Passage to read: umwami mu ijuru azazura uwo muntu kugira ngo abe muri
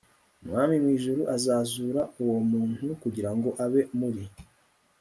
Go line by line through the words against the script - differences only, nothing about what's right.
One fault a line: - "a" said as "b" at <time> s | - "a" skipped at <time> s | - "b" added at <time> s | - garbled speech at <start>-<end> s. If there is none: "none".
none